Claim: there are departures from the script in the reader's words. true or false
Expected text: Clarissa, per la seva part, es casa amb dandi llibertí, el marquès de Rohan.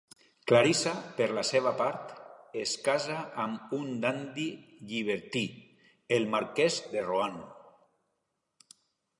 true